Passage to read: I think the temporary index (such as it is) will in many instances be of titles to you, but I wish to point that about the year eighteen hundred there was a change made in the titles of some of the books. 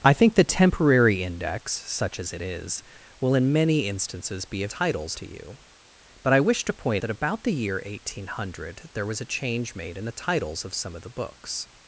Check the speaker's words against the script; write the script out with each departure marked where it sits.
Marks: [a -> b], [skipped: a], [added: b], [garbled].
I think the temporary index (such as it is) will in many instances be of titles to you, but I wish to point that about the year eighteen hundred there was a change made in the titles of some of the books.